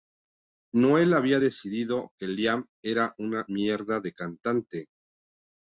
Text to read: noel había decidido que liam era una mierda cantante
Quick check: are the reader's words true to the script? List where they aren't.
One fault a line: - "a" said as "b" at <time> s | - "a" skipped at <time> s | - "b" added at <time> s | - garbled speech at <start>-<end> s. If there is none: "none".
- "de" added at 4.0 s